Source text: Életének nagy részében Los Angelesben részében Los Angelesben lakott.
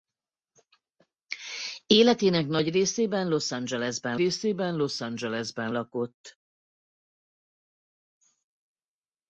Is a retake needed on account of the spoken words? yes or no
no